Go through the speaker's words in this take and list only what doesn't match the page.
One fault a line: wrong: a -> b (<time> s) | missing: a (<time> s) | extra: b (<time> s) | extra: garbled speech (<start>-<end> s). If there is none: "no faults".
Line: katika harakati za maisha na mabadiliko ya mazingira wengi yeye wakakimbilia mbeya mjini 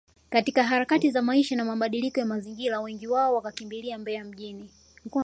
wrong: yeye -> wao (3.1 s)